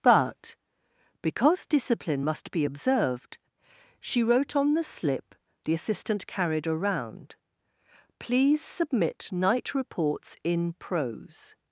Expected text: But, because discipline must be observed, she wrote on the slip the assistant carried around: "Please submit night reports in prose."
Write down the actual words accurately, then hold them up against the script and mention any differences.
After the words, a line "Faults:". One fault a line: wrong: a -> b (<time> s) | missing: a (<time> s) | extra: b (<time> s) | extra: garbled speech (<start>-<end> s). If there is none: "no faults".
But, because discipline must be observed, she wrote on the slip the assistant carried around: "Please submit night reports in prose."
Faults:
no faults